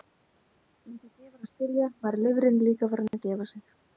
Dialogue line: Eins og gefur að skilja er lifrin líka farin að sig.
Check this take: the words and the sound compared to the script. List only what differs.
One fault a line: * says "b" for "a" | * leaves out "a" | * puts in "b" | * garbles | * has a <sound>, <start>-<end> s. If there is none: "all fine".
* says "var" for "er"
* has a dropout, 3.1-3.1 s
* puts in "gefa"